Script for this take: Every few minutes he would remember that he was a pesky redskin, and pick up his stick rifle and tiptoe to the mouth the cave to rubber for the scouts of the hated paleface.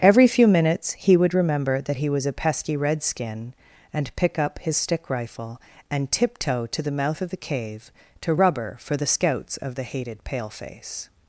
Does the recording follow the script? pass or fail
fail